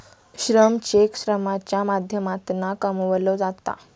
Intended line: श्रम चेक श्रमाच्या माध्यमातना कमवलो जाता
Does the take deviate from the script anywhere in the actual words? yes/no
no